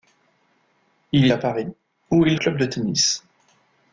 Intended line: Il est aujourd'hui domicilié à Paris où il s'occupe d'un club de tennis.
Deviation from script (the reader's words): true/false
true